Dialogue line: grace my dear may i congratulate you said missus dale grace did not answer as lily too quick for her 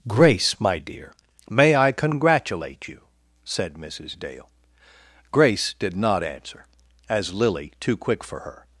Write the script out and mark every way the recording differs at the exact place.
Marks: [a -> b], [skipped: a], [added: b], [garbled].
grace my dear may i congratulate you said missus dale grace did not answer as lily too quick for her